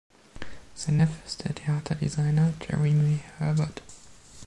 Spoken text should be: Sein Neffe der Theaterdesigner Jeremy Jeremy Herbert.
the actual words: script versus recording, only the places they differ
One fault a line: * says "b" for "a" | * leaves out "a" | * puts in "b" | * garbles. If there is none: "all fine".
* puts in "ist"
* leaves out "Jeremy"